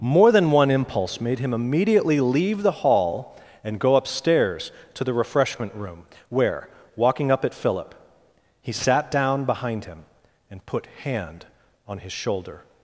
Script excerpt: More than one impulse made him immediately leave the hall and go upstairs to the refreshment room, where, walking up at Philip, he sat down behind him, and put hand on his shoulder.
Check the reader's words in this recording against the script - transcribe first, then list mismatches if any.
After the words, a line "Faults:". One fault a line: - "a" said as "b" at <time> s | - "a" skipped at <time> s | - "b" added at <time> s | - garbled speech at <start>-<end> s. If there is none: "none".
More than one impulse made him immediately leave the hall and go upstairs to the refreshment room, where, walking up at Philip, he sat down behind him, and put hand on his shoulder.
Faults:
none